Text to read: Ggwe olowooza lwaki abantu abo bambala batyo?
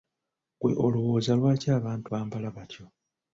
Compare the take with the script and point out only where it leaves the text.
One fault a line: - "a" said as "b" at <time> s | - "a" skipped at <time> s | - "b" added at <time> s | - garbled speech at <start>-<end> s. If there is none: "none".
- "abo" skipped at 2.1 s